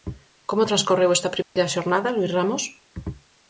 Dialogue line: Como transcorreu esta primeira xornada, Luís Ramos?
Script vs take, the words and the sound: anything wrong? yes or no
yes